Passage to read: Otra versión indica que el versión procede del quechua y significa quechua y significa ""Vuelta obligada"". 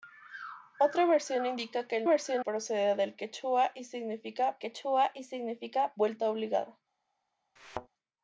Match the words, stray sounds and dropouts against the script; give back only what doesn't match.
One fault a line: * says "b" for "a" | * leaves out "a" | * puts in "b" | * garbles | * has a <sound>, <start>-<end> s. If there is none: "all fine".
* has a thud, 7.6-7.9 s